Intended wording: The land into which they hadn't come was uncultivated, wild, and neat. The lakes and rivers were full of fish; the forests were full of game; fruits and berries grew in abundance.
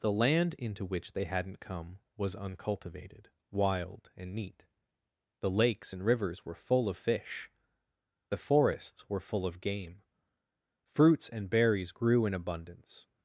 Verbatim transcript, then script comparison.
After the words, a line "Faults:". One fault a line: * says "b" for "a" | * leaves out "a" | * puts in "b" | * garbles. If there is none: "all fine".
The land into which they hadn't come was uncultivated, wild, and neat. The lakes and rivers were full of fish; the forests were full of game; fruits and berries grew in abundance.
Faults:
all fine